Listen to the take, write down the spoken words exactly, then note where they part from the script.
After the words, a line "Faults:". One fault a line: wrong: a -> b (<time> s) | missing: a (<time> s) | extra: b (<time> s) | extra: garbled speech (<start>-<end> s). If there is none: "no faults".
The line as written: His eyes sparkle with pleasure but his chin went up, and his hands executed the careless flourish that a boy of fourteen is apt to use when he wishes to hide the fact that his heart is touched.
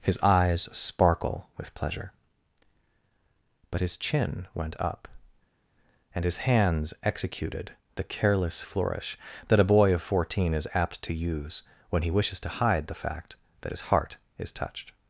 His eyes sparkle with pleasure but his chin went up, and his hands executed the careless flourish that a boy of fourteen is apt to use when he wishes to hide the fact that his heart is touched.
Faults:
no faults